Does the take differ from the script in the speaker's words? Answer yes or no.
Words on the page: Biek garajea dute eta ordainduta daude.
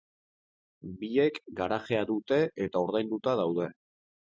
no